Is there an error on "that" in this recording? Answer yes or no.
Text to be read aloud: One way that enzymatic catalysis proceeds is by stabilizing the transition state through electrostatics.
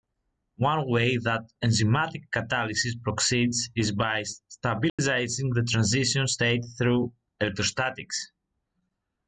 no